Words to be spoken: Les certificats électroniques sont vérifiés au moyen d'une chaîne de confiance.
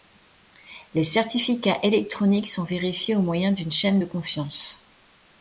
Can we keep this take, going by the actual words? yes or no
yes